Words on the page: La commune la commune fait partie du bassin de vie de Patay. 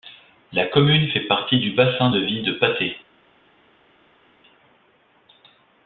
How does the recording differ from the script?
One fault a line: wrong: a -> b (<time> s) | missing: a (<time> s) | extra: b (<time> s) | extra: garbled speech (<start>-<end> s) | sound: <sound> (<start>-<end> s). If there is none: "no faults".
missing: la commune (1.1 s)